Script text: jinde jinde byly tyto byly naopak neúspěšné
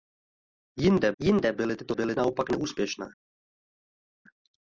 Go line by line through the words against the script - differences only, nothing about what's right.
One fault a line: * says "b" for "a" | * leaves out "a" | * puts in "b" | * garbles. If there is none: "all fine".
all fine